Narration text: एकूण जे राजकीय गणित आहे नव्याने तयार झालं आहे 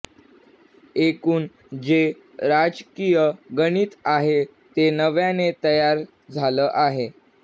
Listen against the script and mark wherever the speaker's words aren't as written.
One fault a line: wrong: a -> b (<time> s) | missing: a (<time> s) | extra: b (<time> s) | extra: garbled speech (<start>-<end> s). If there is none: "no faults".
extra: ते (4.8 s)